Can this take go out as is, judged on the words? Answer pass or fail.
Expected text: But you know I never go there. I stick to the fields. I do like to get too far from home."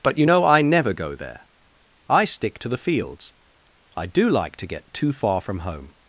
pass